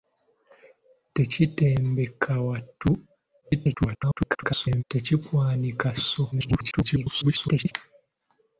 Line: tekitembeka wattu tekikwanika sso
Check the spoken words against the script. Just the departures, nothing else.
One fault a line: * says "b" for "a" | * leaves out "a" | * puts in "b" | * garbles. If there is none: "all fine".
* garbles
* garbles